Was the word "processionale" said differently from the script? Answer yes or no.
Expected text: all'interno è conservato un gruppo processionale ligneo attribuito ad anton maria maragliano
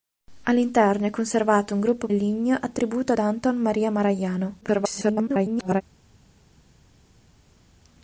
yes